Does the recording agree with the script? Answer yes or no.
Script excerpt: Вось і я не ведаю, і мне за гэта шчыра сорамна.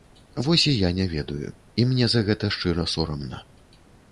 yes